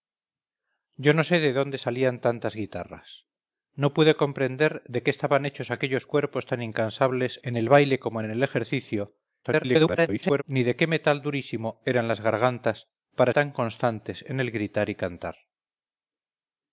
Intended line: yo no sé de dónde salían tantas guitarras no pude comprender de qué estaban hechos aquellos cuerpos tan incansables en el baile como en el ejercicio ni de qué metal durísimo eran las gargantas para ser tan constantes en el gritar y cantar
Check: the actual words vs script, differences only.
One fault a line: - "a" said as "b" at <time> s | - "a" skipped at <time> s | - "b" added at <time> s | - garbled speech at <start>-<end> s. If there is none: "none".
- garbled speech at 9.4-10.4 s
- "ser" skipped at 13.3 s